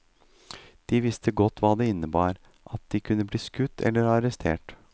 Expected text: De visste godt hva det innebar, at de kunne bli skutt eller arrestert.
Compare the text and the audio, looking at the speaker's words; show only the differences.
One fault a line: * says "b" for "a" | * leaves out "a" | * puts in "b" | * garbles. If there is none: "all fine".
all fine